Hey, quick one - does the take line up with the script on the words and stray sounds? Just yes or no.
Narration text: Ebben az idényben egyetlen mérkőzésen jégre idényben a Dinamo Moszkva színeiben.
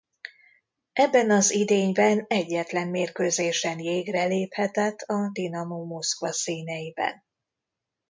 no